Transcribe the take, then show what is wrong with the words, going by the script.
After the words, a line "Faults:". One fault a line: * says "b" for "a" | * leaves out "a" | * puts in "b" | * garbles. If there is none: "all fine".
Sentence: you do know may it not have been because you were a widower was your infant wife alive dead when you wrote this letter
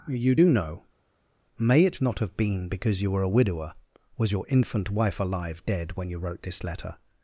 you do know may it not have been because you were a widower was your infant wife alive dead when you wrote this letter
Faults:
all fine